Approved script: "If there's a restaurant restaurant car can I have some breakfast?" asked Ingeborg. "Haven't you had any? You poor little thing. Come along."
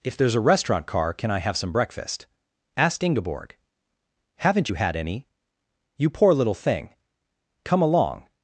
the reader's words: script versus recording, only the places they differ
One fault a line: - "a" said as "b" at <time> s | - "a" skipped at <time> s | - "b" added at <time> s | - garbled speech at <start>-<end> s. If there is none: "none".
- "restaurant" skipped at 0.9 s